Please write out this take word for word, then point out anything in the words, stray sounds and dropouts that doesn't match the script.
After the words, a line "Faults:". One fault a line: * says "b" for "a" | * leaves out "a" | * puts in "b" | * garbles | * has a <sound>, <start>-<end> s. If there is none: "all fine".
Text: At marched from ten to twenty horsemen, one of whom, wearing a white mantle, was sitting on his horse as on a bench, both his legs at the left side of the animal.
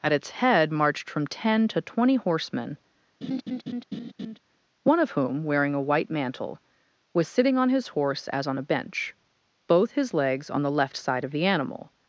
At its head marched from ten to twenty horsemen, one of whom, wearing a white mantle, was sitting on his horse as on a bench, both his legs on the left side of the animal.
Faults:
* puts in "its head"
* has a laugh, 3.2-4.4 s
* says "on" for "at"